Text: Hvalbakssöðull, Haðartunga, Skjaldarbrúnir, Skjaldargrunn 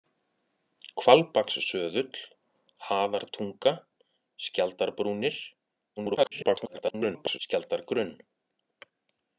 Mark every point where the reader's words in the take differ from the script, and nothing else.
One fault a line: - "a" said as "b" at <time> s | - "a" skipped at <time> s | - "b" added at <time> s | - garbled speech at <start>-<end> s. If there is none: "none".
- garbled speech at 6.0-7.4 s